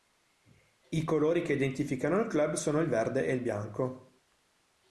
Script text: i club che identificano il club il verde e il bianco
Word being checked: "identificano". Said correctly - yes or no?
yes